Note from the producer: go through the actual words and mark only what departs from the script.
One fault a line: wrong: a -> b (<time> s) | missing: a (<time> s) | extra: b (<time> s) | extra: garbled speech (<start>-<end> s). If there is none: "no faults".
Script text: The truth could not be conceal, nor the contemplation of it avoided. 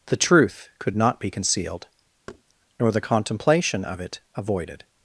wrong: conceal -> concealed (1.3 s)